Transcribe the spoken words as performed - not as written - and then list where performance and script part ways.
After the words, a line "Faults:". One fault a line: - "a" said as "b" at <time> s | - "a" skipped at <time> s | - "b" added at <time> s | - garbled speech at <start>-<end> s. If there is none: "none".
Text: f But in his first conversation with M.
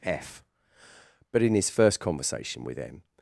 f But in his first conversation with M.
Faults:
none